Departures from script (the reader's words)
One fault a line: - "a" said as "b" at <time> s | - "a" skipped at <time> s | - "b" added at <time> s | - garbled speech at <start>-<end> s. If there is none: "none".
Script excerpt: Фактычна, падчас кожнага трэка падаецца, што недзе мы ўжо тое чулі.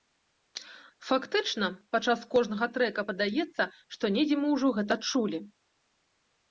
- "тое" said as "гэта" at 4.8 s